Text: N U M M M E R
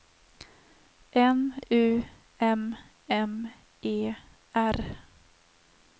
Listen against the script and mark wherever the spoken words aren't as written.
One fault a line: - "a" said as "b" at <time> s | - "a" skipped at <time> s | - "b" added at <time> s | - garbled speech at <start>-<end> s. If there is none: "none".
- "M" skipped at 3.5 s